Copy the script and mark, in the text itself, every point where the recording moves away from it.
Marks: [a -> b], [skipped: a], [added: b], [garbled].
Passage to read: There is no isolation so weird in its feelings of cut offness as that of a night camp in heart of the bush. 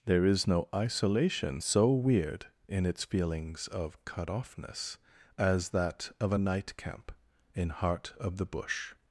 There is no isolation so weird in its feelings of cut offness as that of a night camp in heart of the bush.